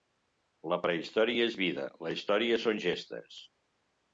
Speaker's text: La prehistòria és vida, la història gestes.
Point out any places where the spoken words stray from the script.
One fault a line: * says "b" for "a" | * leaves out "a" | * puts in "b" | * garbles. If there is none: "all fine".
* puts in "són"